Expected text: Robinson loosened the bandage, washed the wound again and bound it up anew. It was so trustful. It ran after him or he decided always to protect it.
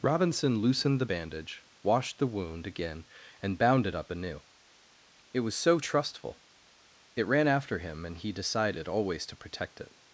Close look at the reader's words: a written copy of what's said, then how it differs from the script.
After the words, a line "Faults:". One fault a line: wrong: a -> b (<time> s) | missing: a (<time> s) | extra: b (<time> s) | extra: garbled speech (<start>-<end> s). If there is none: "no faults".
Robinson loosened the bandage, washed the wound again and bound it up anew. It was so trustful. It ran after him and he decided always to protect it.
Faults:
wrong: or -> and (8.0 s)